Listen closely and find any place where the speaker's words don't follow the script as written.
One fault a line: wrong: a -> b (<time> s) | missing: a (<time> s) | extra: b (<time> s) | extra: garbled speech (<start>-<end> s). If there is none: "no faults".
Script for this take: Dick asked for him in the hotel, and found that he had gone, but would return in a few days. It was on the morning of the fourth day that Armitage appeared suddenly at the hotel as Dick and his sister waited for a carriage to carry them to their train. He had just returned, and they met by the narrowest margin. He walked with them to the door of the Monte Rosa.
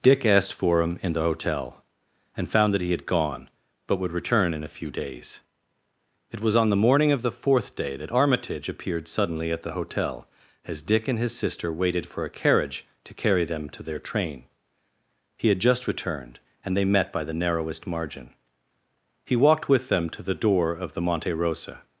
no faults